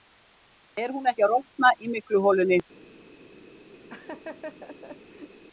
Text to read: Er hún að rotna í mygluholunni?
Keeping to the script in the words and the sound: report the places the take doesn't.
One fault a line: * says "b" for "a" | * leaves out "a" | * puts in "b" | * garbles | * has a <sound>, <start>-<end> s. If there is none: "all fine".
* puts in "ekki"
* has a laugh, 3.9-5.4 s